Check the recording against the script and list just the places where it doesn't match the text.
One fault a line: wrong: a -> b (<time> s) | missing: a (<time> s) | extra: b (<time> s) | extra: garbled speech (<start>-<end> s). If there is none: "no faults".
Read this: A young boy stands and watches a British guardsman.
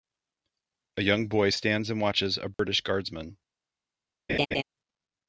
no faults